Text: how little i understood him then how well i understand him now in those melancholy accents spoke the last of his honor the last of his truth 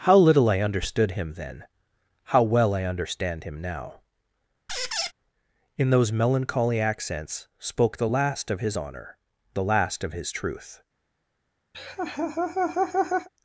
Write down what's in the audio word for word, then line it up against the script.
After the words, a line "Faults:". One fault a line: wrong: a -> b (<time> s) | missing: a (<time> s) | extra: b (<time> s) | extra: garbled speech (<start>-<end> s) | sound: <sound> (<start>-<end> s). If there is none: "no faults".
how little i understood him then how well i understand him now in those melancholy accents spoke the last of his honor the last of his truth
Faults:
sound: squeak (4.7-5.1 s)
sound: laugh (11.7-13.3 s)